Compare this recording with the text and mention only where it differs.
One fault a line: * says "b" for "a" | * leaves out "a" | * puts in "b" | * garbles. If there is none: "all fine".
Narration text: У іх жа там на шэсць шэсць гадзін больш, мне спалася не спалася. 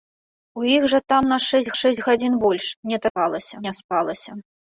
all fine